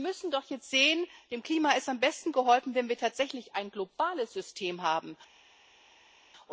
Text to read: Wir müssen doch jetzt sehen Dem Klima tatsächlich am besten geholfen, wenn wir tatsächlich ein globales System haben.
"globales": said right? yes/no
yes